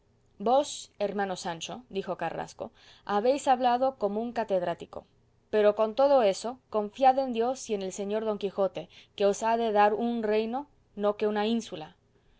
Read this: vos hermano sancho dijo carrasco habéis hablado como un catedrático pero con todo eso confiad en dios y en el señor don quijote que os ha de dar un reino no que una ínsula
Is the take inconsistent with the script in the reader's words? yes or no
no